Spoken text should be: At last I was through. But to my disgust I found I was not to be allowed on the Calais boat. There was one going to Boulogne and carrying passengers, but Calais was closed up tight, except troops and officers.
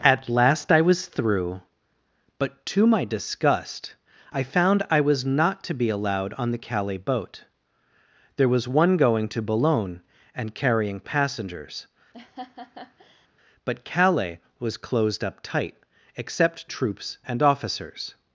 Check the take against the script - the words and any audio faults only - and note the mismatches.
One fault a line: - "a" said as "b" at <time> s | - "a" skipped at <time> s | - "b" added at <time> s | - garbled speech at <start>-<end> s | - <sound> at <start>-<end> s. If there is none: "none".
- laugh at 12.1-13.3 s